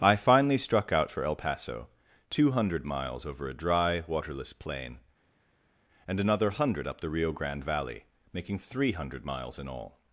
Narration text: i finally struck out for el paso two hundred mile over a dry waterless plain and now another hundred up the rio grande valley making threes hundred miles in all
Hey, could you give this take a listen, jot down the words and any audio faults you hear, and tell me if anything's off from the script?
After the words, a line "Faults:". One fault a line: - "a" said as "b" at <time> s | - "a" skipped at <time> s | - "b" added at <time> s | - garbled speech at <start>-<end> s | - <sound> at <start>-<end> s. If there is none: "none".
i finally struck out for el paso two hundred miles over a dry waterless plain and another hundred up the rio grande valley making three hundred miles in all
Faults:
- "mile" said as "miles" at 2.8 s
- "now" skipped at 6.2 s
- "threes" said as "three" at 8.6 s